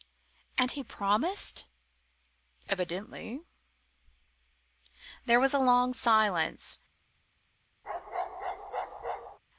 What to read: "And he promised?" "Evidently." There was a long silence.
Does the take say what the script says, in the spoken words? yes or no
yes